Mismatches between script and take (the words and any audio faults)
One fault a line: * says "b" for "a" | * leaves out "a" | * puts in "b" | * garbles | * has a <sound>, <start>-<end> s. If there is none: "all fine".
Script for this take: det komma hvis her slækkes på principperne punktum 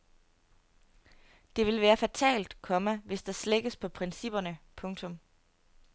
* puts in "vil være fatalt"
* says "der" for "her"